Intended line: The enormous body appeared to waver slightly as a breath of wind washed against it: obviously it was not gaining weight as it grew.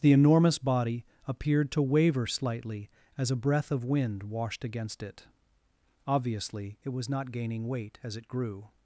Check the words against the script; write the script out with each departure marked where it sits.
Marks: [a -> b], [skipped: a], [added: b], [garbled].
The enormous body appeared to waver slightly as a breath of wind washed against it: obviously it was not gaining weight as it grew.